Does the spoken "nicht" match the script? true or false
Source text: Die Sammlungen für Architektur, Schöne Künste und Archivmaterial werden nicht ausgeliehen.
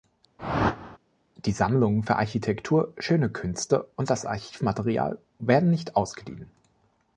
true